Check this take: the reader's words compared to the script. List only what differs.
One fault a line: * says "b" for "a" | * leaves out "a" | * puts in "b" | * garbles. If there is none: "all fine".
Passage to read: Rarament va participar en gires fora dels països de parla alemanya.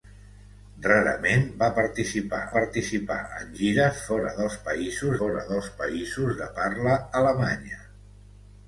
* puts in "participar"
* puts in "fora dels països"